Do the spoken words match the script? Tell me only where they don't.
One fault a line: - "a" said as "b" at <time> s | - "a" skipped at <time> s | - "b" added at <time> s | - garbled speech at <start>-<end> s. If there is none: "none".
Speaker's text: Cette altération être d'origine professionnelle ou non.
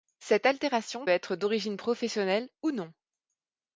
none